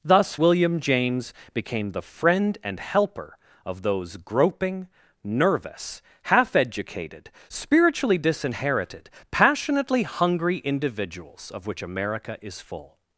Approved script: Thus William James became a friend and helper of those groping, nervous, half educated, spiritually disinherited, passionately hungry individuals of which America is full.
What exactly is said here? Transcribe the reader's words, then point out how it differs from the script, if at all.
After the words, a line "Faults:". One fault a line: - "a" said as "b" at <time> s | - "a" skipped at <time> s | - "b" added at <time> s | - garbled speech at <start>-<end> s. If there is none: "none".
Thus William James became the friend and helper of those groping, nervous, half educated, spiritually disinherited, passionately hungry individuals of which America is full.
Faults:
- "a" said as "the" at 1.9 s